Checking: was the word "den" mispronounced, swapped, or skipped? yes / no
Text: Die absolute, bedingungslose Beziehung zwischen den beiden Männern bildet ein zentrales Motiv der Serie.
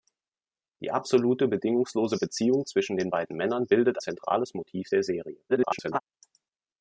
no